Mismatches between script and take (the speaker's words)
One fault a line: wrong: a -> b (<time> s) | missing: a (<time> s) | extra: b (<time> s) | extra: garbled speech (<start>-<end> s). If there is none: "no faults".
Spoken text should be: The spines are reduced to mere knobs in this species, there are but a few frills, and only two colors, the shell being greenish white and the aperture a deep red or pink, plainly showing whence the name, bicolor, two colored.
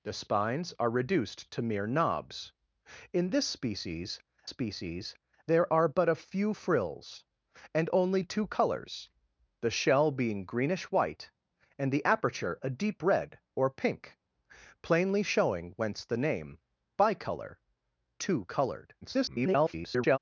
extra: species (4.4 s)
extra: garbled speech (19.0-20.2 s)